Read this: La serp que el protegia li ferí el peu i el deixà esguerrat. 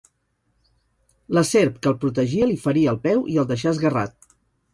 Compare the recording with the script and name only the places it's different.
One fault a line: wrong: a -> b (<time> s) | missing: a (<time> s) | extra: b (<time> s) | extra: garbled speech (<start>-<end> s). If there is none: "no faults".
no faults